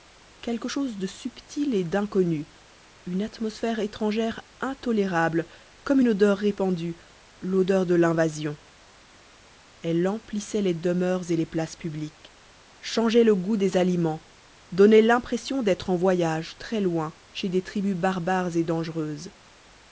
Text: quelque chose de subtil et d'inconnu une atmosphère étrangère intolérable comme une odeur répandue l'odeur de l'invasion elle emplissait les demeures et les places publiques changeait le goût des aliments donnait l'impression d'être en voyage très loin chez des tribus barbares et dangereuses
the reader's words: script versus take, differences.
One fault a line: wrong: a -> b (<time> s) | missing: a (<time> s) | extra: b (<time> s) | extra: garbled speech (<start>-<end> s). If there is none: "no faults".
no faults